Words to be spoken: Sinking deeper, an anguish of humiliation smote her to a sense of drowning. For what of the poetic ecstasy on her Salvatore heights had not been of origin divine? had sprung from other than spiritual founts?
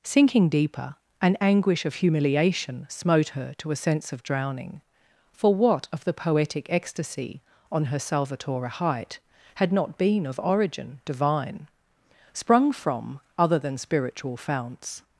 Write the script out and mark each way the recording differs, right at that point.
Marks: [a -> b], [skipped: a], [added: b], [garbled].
Sinking deeper, an anguish of humiliation smote her to a sense of drowning. For what of the poetic ecstasy on her Salvatore [heights -> height] had not been of origin divine? [skipped: had] sprung from other than spiritual founts?